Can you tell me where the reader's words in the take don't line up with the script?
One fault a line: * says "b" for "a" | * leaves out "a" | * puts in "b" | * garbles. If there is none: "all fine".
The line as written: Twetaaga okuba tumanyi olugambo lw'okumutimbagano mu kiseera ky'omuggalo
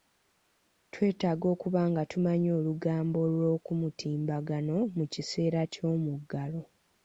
* puts in "nga"